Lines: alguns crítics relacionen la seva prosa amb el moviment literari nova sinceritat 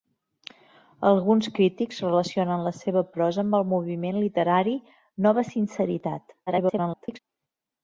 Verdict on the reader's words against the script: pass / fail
fail